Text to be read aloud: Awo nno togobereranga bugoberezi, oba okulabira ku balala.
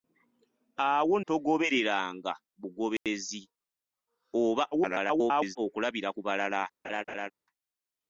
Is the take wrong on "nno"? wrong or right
wrong